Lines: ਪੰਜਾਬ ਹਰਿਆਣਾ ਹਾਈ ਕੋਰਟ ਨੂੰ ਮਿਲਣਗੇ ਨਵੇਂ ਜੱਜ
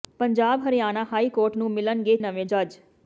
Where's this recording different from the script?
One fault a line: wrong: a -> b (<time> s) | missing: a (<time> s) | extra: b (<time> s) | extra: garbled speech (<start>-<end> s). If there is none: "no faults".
no faults